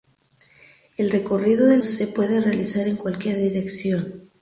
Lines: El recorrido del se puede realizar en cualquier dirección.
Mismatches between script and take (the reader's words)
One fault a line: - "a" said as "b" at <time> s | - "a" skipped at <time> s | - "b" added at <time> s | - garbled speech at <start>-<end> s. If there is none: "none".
none